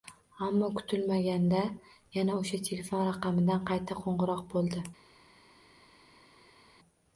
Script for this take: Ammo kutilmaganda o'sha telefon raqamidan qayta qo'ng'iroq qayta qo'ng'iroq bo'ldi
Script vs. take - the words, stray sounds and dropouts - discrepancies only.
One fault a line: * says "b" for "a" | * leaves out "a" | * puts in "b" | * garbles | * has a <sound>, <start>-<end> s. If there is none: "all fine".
* puts in "yana"
* leaves out "qayta qo'ng'iroq"